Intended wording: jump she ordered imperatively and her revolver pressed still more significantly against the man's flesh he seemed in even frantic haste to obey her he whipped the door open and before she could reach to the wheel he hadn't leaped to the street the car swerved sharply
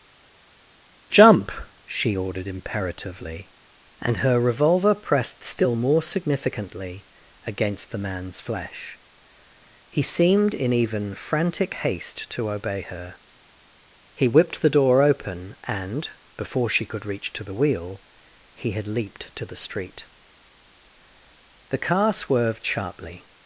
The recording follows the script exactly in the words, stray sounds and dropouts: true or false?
false